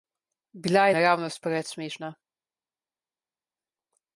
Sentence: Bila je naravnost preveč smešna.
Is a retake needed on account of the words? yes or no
no